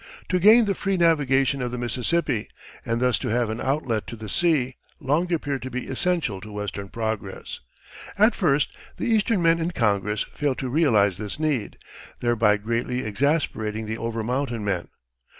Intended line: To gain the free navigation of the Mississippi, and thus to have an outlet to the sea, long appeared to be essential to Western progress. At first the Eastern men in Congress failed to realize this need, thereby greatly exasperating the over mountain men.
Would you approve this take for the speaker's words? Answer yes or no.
yes